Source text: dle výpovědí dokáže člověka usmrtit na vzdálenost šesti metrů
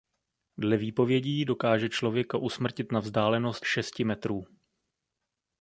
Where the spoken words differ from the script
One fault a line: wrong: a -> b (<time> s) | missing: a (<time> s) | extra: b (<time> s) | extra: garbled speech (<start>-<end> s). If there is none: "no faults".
no faults